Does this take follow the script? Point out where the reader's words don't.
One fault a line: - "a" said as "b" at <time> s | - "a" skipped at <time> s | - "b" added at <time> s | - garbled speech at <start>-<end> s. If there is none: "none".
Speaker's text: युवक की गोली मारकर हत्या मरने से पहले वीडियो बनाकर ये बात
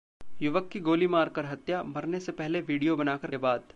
none